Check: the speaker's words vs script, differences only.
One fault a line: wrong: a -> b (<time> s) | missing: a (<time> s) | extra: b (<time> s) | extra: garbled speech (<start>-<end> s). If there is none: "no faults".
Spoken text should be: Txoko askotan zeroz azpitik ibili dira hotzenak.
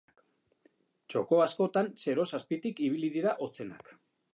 no faults